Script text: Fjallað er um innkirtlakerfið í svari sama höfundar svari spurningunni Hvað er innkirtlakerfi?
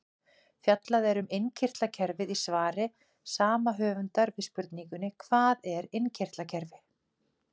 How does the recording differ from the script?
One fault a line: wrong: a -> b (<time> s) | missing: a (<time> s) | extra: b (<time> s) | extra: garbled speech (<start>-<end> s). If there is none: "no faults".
wrong: svari -> við (4.4 s)